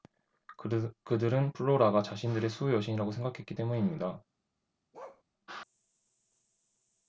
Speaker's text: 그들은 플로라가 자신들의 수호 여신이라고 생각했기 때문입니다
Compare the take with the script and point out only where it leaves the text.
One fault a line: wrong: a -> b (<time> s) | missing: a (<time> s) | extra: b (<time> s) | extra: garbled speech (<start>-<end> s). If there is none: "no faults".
no faults